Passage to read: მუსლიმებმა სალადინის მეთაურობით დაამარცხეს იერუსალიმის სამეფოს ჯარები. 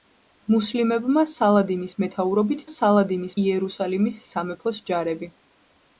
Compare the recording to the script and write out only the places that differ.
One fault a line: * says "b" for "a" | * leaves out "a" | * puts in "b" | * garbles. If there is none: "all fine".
* says "სალადინის" for "დაამარცხეს"